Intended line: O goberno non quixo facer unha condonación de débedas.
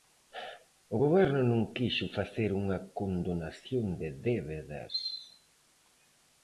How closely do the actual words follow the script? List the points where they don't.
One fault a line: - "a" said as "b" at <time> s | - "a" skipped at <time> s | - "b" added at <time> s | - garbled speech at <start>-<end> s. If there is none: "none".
none